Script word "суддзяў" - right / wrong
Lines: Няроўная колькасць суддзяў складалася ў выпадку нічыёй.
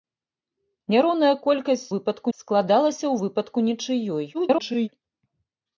wrong